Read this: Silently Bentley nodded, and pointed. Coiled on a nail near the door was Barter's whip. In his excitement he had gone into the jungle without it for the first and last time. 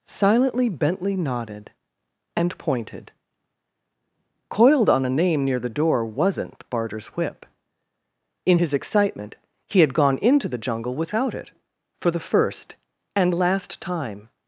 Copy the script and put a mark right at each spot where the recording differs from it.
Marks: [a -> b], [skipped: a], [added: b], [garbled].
Silently Bentley nodded, and pointed. Coiled on a [nail -> name] near the door [was -> wasn't] Barter's whip. In his excitement he had gone into the jungle without it for the first and last time.